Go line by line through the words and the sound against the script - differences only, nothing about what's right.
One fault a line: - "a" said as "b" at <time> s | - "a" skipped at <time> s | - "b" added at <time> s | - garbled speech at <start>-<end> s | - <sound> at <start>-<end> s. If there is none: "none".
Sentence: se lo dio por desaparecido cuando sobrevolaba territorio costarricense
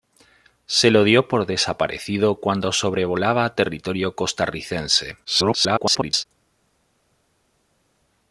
- garbled speech at 5.2-6.3 s